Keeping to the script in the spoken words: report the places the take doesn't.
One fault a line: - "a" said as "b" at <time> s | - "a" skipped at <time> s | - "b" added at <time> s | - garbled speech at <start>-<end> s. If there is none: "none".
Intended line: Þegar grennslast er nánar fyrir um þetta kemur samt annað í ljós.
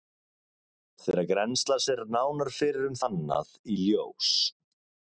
- "þetta kemur samt" skipped at 3.0 s